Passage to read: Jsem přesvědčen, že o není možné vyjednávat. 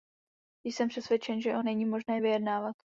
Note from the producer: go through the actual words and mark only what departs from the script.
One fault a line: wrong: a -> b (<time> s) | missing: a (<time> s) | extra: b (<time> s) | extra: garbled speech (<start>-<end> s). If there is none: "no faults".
no faults